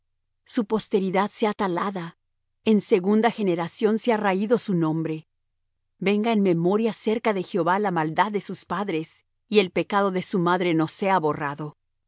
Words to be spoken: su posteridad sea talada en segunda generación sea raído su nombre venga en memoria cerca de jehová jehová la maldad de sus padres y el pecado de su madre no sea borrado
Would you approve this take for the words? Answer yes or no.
no